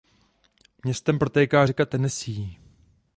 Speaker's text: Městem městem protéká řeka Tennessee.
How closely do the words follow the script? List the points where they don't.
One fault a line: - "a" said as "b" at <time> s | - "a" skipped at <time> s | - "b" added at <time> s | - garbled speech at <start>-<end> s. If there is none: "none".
- "městem" skipped at 1.2 s